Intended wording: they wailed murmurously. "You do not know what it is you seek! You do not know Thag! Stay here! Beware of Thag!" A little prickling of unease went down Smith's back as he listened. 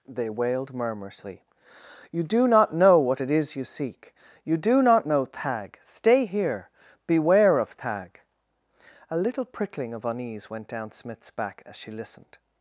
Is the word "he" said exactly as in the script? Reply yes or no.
no